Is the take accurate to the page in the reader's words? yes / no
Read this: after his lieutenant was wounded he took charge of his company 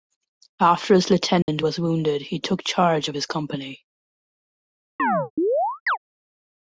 yes